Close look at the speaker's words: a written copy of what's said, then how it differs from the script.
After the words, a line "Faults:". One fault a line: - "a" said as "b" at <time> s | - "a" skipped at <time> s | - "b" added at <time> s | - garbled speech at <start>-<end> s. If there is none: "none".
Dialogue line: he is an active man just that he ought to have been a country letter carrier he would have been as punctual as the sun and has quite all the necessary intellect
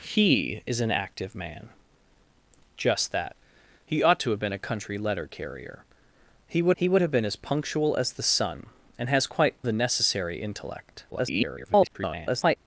he is an active man just that he ought to have been a country letter carrier he would he would have been as punctual as the sun and has quite the necessary intellect [garbled]
Faults:
- "he would" added at 6.8 s
- "all" skipped at 9.6 s
- garbled speech at 11.1-12.6 s